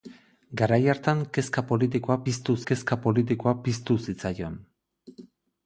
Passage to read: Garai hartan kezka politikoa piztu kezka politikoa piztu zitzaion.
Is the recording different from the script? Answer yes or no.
no